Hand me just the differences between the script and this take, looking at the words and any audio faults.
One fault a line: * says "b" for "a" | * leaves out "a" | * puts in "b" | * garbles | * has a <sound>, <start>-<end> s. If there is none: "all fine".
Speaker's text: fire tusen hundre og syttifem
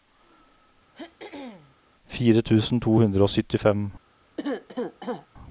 * has a throat clearing, 0.9-1.8 s
* puts in "to"
* has a cough, 4.4-5.3 s